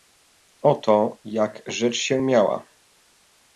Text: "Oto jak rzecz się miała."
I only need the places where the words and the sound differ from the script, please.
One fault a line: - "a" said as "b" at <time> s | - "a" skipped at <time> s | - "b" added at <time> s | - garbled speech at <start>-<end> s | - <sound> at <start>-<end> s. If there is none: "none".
none